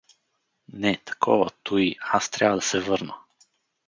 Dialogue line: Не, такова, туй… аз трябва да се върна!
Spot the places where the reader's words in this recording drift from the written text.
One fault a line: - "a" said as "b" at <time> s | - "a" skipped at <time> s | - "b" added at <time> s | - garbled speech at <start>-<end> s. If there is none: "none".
none